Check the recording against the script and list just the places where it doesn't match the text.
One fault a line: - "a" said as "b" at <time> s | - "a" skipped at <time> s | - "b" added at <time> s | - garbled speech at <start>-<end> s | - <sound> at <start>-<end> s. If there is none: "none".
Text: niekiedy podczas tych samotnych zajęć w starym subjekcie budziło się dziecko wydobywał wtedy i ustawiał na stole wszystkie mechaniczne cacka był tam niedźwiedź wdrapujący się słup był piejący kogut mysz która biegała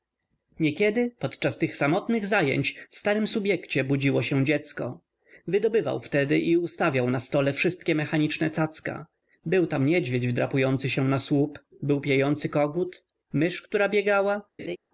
- "na" added at 11.1 s
- laugh at 14.6-14.8 s